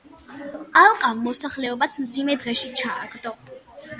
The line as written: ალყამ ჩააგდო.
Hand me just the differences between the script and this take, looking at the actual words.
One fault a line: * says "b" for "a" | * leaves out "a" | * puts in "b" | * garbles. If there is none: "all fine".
* puts in "მოსახლეობაც მძიმე დღეში"